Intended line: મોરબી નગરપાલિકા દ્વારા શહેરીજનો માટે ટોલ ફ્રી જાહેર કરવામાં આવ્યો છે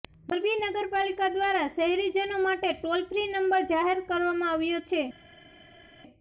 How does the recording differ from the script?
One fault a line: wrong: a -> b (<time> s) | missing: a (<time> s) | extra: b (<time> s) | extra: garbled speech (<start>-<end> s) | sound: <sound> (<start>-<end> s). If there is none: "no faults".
extra: નંબર (3.3 s)